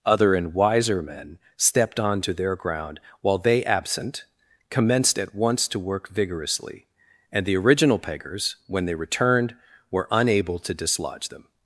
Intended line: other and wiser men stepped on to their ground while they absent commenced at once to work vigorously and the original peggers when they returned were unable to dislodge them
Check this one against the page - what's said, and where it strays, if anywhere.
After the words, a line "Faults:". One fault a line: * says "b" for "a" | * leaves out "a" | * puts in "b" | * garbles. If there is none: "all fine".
other and wiser men stepped on to their ground while they absent commenced at once to work vigorously and the original peggers when they returned were unable to dislodge them
Faults:
all fine